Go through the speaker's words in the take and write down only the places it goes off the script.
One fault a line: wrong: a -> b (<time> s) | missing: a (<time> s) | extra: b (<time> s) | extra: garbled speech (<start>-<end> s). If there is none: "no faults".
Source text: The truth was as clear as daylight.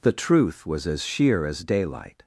wrong: clear -> sheer (1.0 s)